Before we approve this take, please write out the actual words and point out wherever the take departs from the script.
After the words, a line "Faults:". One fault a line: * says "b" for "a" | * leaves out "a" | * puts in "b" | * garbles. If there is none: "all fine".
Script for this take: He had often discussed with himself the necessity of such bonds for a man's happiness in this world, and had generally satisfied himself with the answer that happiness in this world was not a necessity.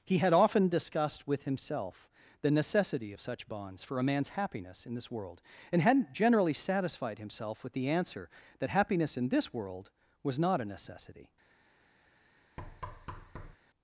He had often discussed with himself the necessity of such bonds for a man's happiness in this world, and hadn't generally satisfied himself with the answer that happiness in this world was not a necessity.
Faults:
* says "hadn't" for "had"